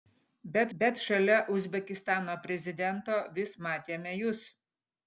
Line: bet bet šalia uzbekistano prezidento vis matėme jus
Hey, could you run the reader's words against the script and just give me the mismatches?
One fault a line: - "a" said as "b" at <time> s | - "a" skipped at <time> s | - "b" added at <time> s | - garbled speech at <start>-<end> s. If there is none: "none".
none